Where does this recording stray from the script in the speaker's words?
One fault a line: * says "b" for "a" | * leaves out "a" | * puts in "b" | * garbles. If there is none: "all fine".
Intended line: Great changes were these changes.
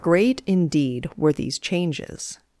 * says "indeed" for "changes"